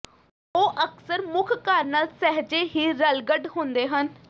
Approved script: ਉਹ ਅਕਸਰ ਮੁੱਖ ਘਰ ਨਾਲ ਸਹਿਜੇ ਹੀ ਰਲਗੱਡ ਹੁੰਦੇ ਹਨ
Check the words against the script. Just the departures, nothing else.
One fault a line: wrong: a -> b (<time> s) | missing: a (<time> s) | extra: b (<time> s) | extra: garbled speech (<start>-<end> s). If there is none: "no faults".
no faults